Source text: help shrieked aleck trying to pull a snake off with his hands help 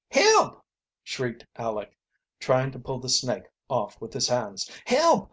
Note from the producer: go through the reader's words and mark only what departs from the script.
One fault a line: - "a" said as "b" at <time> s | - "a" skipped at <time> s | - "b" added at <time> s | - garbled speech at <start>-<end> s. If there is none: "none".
- "a" said as "the" at 3.0 s